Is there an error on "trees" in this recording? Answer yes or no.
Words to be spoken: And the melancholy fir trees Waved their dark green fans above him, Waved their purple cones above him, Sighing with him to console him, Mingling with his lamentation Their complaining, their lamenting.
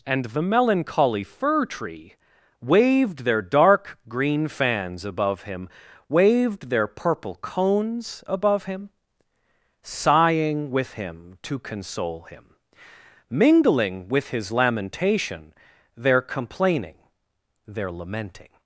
yes